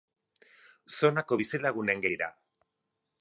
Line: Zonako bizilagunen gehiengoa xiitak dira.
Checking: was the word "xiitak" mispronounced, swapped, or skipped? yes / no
yes